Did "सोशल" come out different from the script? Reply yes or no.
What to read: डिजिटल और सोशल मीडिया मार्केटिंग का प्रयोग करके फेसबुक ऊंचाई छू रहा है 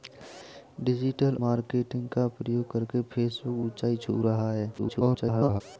yes